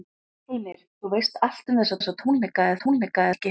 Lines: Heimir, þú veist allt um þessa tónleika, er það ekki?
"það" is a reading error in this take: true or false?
true